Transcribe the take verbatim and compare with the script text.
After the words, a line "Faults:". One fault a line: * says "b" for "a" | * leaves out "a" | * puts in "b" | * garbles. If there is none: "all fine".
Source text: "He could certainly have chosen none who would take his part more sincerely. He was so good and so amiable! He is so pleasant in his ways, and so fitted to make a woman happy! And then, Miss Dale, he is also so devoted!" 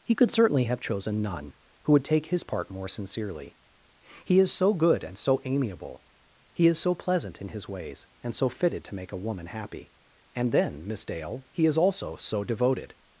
"He could certainly have chosen none who would take his part more sincerely. He is so good and so amiable! He is so pleasant in his ways, and so fitted to make a woman happy! And then, Miss Dale, he is also so devoted!"
Faults:
* says "is" for "was"